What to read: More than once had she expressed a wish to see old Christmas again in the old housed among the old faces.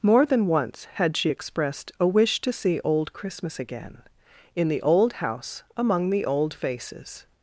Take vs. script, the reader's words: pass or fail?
fail